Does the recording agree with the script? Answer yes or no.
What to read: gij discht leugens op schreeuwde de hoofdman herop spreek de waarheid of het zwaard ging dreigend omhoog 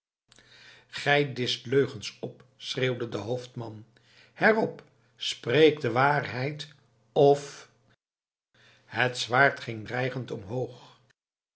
yes